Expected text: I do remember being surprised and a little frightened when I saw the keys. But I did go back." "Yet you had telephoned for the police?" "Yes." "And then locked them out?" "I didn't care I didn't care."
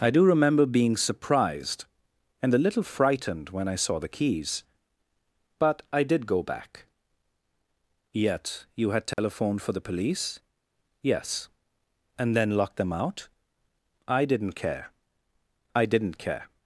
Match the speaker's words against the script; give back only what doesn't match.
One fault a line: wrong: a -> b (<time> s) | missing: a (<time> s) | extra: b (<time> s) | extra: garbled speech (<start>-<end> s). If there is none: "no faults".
no faults